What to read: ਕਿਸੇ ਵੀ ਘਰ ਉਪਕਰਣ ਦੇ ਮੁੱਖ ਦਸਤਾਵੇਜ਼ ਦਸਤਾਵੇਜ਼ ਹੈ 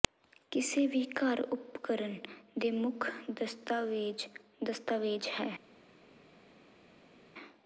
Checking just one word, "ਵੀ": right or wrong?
right